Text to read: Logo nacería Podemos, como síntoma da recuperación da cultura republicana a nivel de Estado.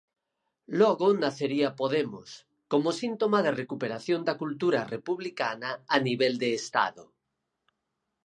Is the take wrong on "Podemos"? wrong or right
right